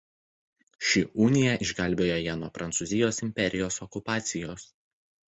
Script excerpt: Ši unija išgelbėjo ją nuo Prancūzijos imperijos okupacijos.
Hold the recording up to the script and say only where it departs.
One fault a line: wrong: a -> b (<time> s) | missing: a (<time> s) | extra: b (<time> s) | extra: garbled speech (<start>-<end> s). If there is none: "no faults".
no faults